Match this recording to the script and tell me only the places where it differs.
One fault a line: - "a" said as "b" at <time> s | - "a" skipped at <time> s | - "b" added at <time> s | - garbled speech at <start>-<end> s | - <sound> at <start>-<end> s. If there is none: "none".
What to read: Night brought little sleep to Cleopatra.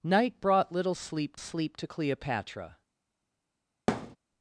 - "sleep" added at 1.4 s
- thud at 3.9-4.2 s